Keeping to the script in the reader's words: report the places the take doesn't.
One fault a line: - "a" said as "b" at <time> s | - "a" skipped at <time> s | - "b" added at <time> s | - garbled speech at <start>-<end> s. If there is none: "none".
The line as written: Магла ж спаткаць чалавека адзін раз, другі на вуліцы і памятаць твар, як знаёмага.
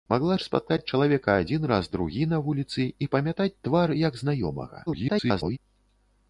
- garbled speech at 4.9-5.6 s